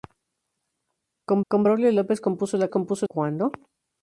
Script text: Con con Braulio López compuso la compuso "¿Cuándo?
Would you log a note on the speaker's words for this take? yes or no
no